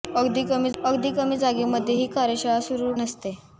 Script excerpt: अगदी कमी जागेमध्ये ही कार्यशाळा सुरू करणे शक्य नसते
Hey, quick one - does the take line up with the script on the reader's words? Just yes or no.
no